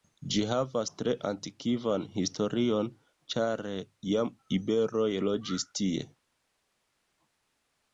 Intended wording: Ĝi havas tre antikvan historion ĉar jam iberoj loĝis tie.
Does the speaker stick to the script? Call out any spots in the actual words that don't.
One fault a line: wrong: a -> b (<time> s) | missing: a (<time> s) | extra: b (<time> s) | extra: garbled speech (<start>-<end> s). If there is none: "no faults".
no faults